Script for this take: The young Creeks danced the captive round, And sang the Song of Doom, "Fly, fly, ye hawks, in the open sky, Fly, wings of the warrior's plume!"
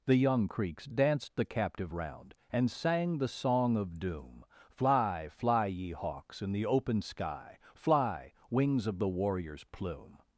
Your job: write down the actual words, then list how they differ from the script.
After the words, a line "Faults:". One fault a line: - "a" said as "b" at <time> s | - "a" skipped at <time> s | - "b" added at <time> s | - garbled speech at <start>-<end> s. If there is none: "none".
The young Creeks danced the captive round, And sang the Song of Doom, "Fly, fly, ye hawks, in the open sky, Fly, wings of the warrior's plume!"
Faults:
none